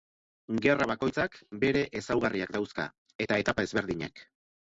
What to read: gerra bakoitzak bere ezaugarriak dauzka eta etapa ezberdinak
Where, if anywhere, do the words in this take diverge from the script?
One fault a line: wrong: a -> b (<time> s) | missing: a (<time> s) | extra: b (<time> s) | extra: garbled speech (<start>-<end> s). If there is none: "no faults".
no faults